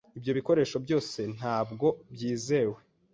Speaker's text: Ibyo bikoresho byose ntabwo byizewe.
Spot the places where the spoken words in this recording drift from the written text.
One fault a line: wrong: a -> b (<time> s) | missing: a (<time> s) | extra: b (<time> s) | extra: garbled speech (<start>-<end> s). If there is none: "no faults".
no faults